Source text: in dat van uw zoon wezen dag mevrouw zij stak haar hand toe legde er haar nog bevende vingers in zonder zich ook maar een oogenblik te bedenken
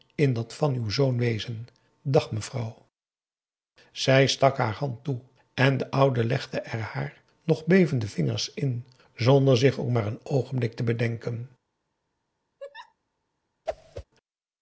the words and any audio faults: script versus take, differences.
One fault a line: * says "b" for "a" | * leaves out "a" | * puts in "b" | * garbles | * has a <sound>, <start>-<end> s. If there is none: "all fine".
* puts in "en de oude"
* has a laugh, 12.6-13.0 s
* has a whoosh, 13.7-14.0 s